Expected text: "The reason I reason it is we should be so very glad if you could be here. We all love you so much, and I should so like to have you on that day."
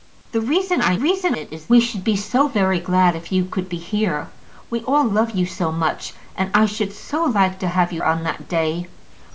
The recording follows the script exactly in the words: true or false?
true